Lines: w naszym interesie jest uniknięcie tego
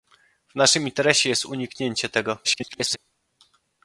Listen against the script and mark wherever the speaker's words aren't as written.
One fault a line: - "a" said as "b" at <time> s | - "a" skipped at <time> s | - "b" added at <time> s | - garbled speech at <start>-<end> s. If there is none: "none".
- garbled speech at 2.4-3.0 s